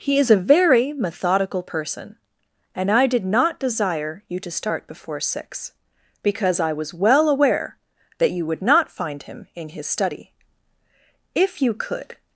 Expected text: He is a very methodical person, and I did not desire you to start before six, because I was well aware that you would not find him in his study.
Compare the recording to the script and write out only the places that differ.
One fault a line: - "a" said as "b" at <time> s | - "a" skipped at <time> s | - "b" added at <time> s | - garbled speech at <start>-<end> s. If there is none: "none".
- "If you could" added at 11.3 s